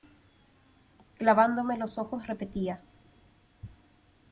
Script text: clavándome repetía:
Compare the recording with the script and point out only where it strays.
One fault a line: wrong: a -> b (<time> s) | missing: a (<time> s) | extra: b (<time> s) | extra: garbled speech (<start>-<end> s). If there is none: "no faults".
extra: los ojos (1.8 s)